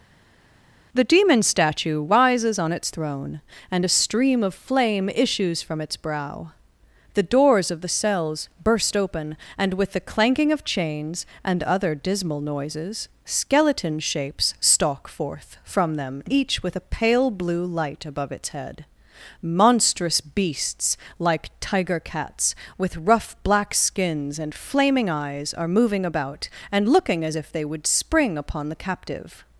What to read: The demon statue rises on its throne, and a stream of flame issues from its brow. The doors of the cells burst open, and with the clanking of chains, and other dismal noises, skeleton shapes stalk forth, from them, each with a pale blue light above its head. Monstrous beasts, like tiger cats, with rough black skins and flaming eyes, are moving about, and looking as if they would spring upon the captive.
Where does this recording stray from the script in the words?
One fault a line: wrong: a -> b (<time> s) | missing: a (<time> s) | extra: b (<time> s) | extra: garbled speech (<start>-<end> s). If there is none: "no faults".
no faults